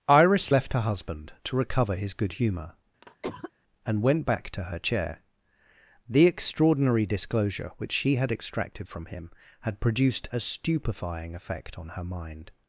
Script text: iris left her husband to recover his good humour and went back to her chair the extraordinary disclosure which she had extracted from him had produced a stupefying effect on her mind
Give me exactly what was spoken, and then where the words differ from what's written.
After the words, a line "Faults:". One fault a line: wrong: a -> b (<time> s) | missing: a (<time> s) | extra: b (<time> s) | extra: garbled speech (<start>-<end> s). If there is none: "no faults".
iris left her husband to recover his good humour and went back to her chair the extraordinary disclosure which she had extracted from him had produced a stupefying effect on her mind
Faults:
no faults